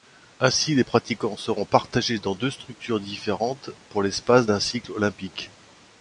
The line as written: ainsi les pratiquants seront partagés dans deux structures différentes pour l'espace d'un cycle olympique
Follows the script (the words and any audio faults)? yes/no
yes